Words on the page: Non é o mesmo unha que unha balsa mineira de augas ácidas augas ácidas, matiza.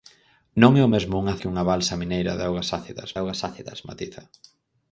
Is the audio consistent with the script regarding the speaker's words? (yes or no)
yes